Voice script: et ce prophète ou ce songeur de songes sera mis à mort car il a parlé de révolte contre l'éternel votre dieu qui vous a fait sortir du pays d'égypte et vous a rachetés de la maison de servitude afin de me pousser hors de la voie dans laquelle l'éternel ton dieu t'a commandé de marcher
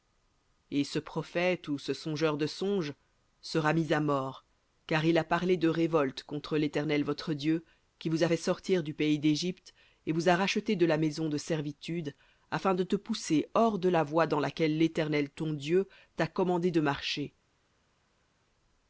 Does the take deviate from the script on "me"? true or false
true